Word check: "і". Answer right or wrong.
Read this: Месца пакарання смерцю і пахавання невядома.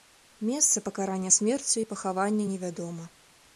right